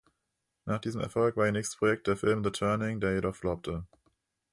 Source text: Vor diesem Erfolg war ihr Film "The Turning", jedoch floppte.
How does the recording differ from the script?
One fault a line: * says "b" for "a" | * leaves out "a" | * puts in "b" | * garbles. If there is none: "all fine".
* says "Nach" for "Vor"
* puts in "nächstes Projekt der"
* puts in "der"